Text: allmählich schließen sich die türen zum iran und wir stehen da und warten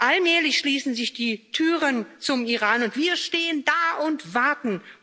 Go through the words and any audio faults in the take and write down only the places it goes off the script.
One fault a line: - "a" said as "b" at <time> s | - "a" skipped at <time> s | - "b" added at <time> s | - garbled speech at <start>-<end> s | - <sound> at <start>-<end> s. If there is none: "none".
none